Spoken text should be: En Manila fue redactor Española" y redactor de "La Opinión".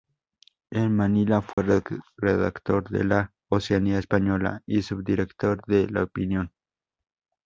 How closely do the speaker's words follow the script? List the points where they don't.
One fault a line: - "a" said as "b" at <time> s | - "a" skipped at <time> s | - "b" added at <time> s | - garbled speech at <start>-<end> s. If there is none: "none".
- "de La Oceanía" added at 2.9 s
- "redactor" said as "subdirector" at 4.8 s